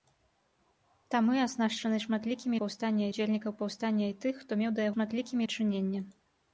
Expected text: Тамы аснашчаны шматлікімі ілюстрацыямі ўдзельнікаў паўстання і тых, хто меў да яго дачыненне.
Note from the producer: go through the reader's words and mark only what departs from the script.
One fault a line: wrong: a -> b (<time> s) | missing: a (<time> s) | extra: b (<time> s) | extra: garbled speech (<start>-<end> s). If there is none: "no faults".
wrong: ілюстрацыямі -> паўстання (2.6 s)
wrong: яго -> шматлікімі (4.9 s)